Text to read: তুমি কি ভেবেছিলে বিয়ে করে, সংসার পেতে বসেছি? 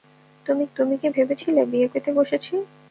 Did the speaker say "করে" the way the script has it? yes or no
no